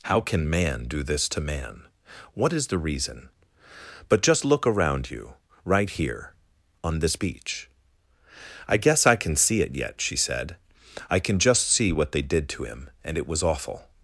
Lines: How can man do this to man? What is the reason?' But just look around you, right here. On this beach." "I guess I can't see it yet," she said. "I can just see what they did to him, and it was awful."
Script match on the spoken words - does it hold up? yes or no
no